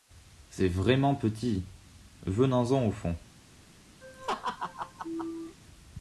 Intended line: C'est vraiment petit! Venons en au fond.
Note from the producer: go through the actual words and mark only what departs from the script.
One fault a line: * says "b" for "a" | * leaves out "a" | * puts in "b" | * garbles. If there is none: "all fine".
all fine